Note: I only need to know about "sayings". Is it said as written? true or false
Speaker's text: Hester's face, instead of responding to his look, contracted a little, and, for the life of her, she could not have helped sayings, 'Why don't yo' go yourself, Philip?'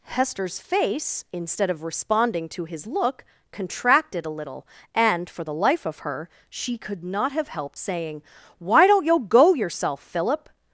false